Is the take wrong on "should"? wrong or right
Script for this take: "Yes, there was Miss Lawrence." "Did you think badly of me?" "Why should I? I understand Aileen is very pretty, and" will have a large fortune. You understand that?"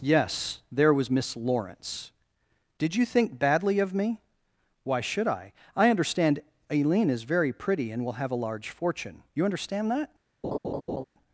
right